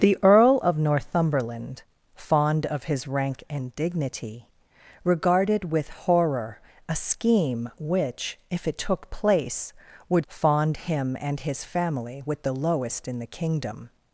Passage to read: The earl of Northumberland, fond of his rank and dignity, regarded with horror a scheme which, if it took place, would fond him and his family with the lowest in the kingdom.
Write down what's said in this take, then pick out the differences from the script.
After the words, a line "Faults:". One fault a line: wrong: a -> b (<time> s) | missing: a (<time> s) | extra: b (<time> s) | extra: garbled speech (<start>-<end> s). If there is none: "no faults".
The earl of Northumberland, fond of his rank and dignity, regarded with horror a scheme which, if it took place, would fond him and his family with the lowest in the kingdom.
Faults:
no faults